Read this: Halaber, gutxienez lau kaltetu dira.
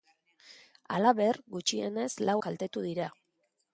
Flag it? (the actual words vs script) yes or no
no